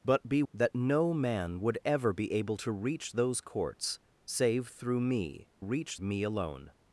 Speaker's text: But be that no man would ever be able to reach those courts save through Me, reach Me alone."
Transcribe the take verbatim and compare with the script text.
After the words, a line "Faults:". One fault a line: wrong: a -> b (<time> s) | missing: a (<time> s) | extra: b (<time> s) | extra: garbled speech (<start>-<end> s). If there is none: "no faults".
But be that no man would ever be able to reach those courts save through Me, reach Me alone."
Faults:
no faults